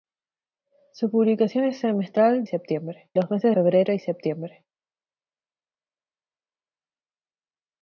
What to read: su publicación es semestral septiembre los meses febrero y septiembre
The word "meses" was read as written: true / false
true